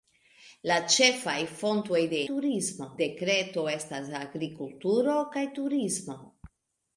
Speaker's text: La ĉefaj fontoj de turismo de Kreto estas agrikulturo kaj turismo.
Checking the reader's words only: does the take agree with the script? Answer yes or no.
yes